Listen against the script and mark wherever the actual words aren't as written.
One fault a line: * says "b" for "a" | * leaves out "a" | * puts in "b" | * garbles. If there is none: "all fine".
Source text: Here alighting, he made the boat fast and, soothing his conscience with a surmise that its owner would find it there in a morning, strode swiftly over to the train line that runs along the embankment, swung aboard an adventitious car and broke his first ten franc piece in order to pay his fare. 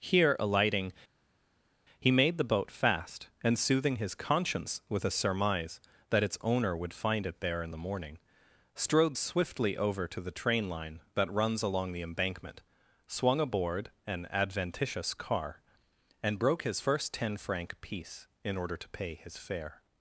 * says "the" for "a"